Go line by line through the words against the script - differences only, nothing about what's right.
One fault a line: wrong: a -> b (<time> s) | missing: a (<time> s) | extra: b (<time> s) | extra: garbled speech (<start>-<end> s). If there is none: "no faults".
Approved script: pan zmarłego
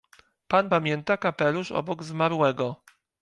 extra: pamięta kapelusz obok (0.7 s)